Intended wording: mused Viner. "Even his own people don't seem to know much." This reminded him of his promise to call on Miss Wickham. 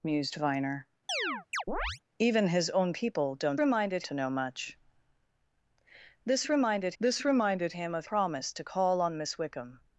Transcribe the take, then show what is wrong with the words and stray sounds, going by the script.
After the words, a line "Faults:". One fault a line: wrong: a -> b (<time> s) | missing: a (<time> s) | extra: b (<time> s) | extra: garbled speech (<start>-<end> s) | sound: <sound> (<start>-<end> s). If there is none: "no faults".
mused Viner. "Even his own people don't reminded to know much." This reminded this reminded him of promise to call on Miss Wickham.
Faults:
sound: chirp (1.1-2.0 s)
wrong: seem -> reminded (3.6 s)
extra: this reminded (7.0 s)
missing: his (8.1 s)